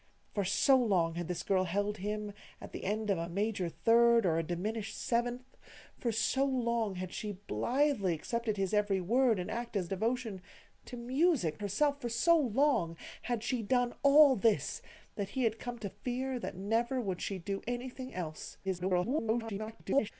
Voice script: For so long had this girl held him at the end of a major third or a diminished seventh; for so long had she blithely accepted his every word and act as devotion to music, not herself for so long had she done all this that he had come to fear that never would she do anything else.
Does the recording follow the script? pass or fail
fail